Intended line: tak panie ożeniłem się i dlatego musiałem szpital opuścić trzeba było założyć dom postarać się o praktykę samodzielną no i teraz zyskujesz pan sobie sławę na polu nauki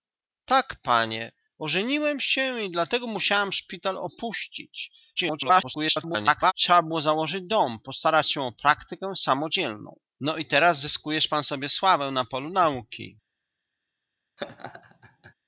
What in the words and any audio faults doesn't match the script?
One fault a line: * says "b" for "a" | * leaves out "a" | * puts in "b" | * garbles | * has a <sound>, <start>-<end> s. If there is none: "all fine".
* garbles
* has a laugh, 14.4-15.3 s